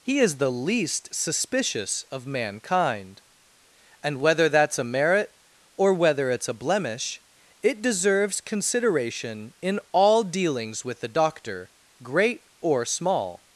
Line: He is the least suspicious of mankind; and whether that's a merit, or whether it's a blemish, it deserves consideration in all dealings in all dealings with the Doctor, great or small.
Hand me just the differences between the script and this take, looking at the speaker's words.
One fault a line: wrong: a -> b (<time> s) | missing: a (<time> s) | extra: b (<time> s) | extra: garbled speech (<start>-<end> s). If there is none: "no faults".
missing: in all dealings (10.8 s)